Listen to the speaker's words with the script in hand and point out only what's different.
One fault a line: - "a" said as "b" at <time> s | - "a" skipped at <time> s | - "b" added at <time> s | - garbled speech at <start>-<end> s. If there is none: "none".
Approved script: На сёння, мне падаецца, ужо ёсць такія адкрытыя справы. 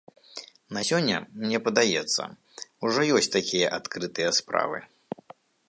none